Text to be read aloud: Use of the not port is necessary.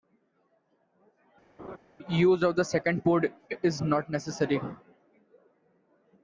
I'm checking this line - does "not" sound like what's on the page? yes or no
no